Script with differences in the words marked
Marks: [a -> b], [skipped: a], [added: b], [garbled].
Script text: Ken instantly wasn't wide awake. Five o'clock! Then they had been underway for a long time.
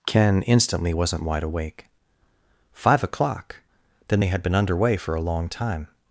Ken instantly wasn't wide awake. Five o'clock! Then they had been underway for a long time.